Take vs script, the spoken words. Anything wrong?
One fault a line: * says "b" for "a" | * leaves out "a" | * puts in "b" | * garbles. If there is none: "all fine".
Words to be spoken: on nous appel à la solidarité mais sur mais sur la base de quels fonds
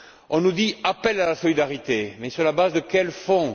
* puts in "dit"
* leaves out "mais sur"